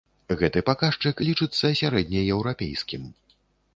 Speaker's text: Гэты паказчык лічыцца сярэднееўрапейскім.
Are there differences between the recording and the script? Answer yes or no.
no